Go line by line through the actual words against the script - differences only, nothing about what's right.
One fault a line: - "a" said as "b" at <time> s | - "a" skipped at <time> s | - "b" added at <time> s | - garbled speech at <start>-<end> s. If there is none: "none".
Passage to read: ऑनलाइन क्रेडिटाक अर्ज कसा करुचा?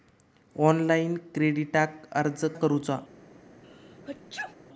- "कसा" skipped at 2.5 s